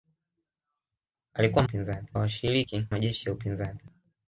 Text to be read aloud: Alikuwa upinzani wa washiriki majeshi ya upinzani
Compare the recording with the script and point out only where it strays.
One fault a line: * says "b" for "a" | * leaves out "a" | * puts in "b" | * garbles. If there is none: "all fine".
all fine